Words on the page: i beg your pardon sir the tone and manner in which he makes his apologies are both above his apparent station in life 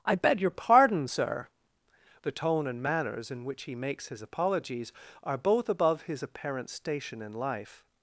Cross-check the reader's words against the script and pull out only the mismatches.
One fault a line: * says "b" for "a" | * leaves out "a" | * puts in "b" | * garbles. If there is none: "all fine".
* says "manners" for "manner"